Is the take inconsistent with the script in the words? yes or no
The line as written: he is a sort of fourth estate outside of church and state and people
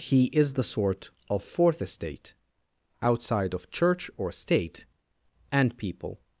yes